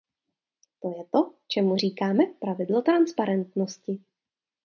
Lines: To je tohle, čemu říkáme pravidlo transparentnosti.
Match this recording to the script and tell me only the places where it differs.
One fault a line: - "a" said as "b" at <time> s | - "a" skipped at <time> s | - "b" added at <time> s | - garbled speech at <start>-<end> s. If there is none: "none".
- "tohle" said as "to" at 1.1 s